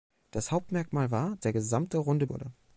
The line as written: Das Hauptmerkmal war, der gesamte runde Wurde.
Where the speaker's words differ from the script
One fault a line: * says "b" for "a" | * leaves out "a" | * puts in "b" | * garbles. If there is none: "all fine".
all fine